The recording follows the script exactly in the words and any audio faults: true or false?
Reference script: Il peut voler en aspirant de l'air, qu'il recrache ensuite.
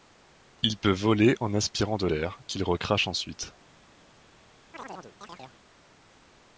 false